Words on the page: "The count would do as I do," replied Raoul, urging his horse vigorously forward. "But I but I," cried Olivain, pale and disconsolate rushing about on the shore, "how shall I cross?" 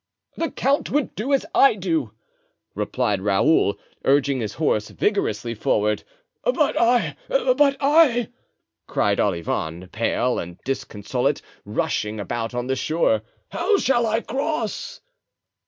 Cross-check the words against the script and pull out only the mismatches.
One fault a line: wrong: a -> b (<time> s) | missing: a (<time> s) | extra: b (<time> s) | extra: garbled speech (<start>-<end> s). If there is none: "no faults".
no faults